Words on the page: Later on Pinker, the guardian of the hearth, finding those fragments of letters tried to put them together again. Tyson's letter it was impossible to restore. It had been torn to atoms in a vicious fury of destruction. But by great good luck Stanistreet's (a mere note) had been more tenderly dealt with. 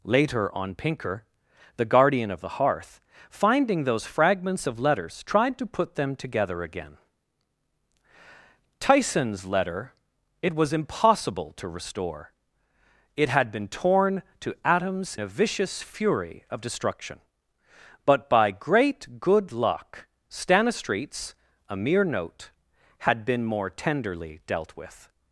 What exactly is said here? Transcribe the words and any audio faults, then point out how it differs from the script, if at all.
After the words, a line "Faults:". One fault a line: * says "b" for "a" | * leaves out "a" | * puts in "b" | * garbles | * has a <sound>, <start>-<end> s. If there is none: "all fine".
Later on Pinker, the guardian of the hearth, finding those fragments of letters tried to put them together again. Tyson's letter it was impossible to restore. It had been torn to atoms a vicious fury of destruction. But by great good luck Stanistreet's (a mere note) had been more tenderly dealt with.
Faults:
* leaves out "in"